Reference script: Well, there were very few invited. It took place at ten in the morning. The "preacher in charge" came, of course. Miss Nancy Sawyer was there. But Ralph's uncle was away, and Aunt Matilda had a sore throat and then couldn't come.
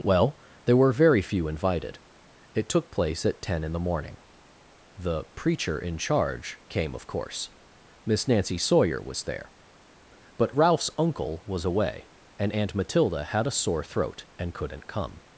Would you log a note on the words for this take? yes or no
yes